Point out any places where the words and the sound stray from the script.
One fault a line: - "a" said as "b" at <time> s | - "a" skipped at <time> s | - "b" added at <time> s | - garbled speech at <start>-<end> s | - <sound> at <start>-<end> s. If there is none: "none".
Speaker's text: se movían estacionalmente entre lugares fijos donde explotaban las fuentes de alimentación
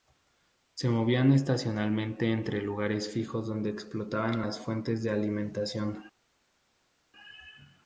none